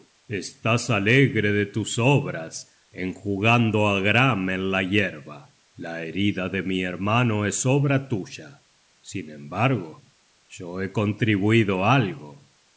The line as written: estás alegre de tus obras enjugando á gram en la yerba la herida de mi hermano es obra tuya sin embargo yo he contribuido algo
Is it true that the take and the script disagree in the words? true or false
false